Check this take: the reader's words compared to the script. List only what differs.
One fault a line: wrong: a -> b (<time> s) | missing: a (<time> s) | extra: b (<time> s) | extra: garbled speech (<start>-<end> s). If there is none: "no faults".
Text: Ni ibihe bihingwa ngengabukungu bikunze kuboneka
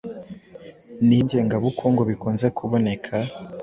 missing: ibihe bihingwa (1.1 s)